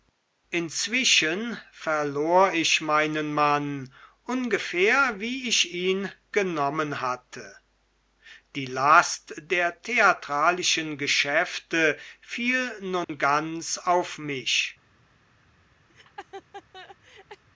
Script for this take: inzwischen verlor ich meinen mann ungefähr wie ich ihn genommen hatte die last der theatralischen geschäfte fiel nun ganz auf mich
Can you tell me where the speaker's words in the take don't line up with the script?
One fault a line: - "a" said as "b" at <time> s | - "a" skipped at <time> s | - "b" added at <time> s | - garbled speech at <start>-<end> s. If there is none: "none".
none